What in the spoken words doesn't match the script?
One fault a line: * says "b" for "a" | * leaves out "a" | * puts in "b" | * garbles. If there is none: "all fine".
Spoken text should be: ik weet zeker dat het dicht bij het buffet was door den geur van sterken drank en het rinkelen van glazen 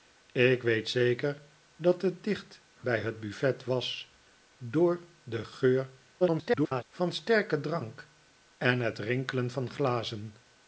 * garbles